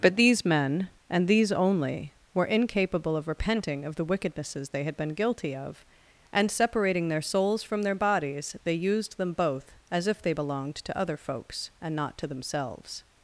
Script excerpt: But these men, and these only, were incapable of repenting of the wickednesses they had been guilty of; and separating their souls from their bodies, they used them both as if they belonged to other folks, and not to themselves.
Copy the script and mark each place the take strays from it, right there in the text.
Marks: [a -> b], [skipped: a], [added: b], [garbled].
But these men, and these only, were incapable of repenting of the wickednesses they had been guilty of; and separating their souls from their bodies, they used them both as if they belonged to other folks, and not to themselves.